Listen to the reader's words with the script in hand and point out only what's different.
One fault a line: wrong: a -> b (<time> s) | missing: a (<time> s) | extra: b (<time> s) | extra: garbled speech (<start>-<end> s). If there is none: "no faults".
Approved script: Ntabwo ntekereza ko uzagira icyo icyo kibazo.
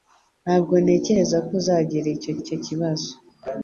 no faults